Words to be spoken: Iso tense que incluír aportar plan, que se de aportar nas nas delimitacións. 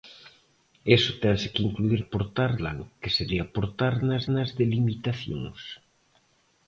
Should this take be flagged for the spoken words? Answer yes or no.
no